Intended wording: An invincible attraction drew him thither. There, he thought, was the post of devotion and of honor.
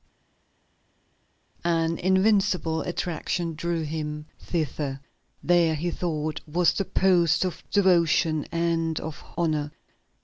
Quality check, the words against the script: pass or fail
pass